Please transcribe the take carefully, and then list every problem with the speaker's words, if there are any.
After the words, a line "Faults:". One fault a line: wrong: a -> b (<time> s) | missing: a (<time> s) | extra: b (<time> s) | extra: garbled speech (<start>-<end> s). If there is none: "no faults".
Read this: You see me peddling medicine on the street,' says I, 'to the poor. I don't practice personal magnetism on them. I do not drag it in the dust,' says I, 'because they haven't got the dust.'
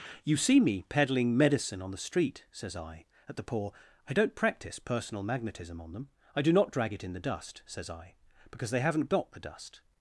You see me peddling medicine on the street,' says I, 'at the poor. I don't practice personal magnetism on them. I do not drag it in the dust,' says I, 'because they haven't got the dust.'
Faults:
wrong: to -> at (3.3 s)